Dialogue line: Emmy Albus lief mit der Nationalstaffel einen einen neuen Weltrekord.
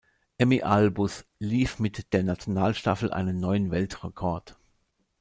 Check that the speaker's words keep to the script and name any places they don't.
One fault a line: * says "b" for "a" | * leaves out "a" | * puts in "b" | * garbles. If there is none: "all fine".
* leaves out "einen"